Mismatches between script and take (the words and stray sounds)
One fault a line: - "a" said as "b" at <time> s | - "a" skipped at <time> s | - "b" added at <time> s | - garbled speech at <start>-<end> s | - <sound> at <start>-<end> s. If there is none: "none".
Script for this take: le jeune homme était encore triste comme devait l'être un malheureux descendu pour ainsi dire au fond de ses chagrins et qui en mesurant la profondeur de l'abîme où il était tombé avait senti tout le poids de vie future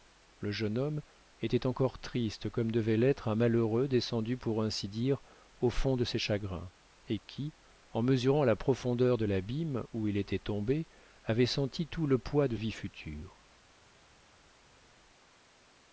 none